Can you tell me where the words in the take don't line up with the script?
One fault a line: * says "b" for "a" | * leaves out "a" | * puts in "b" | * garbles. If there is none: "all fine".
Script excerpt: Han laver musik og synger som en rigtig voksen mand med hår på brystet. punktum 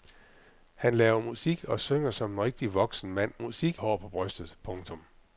* says "musik" for "med"